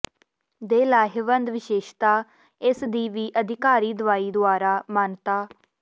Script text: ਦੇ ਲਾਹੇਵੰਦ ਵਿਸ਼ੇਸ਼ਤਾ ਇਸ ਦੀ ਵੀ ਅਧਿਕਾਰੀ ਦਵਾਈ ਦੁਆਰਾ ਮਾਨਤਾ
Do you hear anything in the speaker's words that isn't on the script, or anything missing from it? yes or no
no